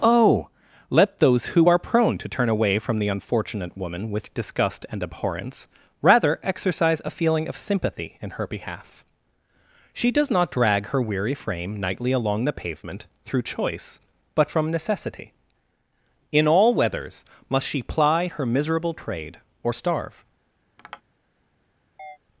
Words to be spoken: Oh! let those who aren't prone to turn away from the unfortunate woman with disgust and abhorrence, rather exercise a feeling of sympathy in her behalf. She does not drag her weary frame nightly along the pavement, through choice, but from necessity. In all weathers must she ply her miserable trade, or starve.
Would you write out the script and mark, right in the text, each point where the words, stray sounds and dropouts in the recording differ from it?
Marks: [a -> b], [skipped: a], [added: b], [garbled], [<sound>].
Oh! let those who [aren't -> are] prone to turn away from the unfortunate woman with disgust and abhorrence, rather exercise a feeling of sympathy in her behalf. She does not drag her weary frame nightly along the pavement, through choice, but from necessity. In all weathers must she ply her miserable trade, or starve. [tap] [chirp]